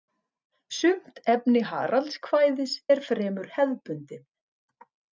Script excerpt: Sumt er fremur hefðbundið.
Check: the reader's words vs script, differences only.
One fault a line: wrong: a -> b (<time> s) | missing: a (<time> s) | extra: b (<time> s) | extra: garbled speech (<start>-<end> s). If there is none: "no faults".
extra: efni Haraldskvæðis (1.3 s)